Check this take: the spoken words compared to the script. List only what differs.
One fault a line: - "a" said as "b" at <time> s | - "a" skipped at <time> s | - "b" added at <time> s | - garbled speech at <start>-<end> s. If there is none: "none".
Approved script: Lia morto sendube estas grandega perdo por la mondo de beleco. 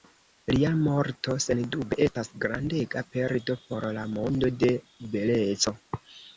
none